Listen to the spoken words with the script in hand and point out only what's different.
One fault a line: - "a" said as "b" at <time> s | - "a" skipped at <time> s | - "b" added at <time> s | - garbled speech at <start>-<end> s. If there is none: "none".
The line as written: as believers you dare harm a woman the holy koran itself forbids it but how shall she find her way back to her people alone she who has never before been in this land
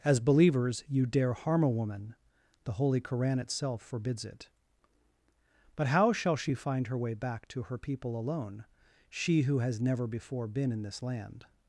none